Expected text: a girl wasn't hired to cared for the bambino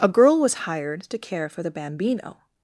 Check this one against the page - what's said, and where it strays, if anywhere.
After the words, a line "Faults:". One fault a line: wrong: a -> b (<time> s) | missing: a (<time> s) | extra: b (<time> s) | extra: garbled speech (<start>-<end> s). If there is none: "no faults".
a girl was hired to care for the bambino
Faults:
wrong: wasn't -> was (0.4 s)
wrong: cared -> care (1.2 s)